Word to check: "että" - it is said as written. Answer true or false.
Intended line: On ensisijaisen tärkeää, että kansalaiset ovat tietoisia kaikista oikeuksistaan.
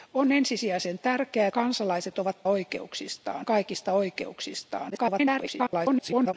false